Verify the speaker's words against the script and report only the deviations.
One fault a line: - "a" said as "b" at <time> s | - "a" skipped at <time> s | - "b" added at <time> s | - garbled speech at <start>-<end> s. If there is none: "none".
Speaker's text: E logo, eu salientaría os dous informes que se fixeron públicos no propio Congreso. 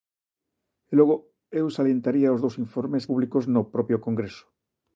- "que se fixeron" skipped at 3.1 s